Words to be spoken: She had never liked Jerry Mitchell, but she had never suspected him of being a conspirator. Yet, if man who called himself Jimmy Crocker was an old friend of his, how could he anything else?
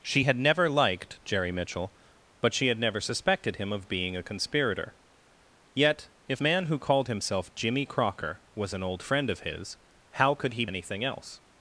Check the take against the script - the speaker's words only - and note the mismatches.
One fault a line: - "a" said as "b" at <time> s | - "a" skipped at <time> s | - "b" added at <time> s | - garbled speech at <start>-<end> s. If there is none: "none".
none